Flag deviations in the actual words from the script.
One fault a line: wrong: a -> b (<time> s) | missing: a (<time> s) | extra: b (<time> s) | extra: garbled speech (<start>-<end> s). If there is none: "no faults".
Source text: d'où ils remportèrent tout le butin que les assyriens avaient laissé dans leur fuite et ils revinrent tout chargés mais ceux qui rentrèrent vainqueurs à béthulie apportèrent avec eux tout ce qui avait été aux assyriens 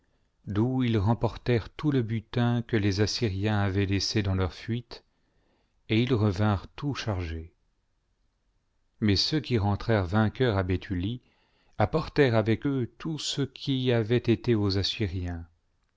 no faults